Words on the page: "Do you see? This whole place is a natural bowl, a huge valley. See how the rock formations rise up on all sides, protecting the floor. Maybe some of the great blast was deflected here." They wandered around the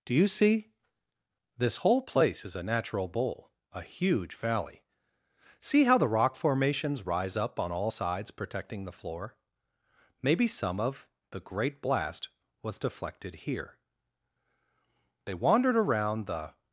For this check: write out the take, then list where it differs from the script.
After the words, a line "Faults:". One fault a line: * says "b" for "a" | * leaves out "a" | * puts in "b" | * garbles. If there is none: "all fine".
"Do you see? This whole place is a natural bowl, a huge valley. See how the rock formations rise up on all sides, protecting the floor. Maybe some of the great blast was deflected here." They wandered around the
Faults:
all fine